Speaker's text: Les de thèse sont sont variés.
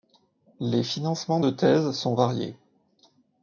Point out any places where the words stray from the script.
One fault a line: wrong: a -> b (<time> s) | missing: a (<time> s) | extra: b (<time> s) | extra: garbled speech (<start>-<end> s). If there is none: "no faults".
extra: financements (0.8 s)
missing: sont (2.1 s)